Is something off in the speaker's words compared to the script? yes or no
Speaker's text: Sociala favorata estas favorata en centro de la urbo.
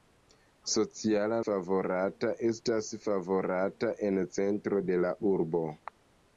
no